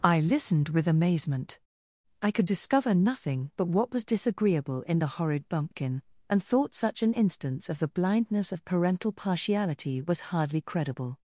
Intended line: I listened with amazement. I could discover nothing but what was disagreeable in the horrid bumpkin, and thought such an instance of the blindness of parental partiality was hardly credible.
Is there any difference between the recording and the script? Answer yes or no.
no